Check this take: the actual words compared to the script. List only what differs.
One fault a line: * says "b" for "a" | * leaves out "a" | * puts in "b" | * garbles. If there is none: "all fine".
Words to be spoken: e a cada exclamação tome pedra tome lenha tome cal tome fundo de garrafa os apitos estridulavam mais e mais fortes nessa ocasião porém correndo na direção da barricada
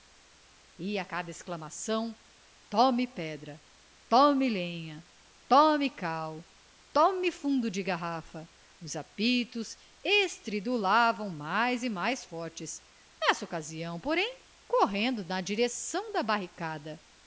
all fine